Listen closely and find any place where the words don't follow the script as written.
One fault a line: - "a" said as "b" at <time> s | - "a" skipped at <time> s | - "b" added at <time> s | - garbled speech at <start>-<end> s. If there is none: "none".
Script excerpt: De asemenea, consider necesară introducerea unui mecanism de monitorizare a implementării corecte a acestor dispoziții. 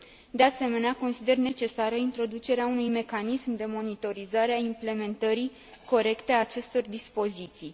none